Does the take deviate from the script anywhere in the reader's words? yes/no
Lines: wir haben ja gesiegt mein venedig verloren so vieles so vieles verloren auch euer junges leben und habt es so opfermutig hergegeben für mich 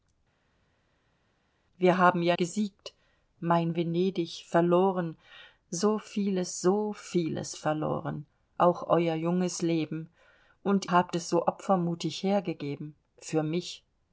no